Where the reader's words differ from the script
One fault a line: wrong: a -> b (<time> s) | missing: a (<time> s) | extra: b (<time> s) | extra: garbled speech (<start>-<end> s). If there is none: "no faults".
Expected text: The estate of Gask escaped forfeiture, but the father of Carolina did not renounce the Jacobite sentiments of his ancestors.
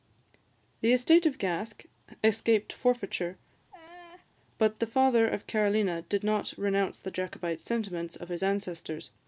no faults